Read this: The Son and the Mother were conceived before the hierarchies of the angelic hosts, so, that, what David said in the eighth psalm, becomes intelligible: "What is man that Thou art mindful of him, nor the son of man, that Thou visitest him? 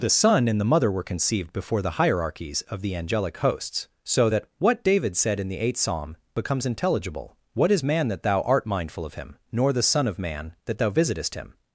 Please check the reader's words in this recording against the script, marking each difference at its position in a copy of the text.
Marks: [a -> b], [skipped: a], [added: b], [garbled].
The Son and the Mother were conceived before the hierarchies of the angelic hosts, so, that, what David said in the eighth psalm, becomes intelligible: "What is man that Thou art mindful of him, nor the son of man, that Thou visitest him?